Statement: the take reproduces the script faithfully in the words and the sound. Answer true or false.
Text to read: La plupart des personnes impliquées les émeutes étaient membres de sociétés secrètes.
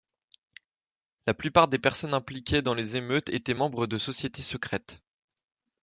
false